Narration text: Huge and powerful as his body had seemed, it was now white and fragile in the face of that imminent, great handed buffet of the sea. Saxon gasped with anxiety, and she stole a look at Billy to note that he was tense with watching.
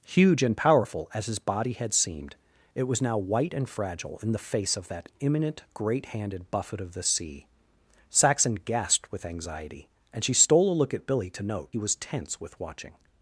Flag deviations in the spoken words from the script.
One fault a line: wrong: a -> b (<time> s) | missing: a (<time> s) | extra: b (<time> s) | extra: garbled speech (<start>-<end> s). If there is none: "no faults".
missing: that (11.7 s)